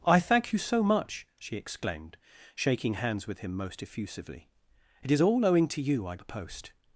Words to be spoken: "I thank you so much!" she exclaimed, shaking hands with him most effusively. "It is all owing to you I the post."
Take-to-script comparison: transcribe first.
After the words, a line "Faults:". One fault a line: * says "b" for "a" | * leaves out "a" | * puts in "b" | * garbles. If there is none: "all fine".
"I thank you so much!" she exclaimed, shaking hands with him most effusively. "It is all owing to you I the post."
Faults:
all fine